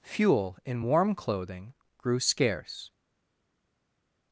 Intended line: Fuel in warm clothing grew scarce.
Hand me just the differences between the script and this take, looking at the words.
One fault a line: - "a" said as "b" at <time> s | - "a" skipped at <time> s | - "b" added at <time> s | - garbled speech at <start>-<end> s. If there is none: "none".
none